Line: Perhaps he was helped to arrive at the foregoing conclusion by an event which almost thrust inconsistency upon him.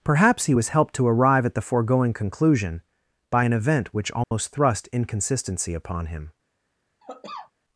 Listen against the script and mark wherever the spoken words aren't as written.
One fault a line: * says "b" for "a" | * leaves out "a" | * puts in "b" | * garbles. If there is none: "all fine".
all fine